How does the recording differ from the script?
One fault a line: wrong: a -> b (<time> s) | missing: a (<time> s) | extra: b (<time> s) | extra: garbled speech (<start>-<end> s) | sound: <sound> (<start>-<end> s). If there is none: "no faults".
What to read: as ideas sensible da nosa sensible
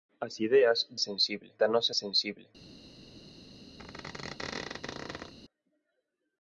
sound: squeak (3.8-5.3 s)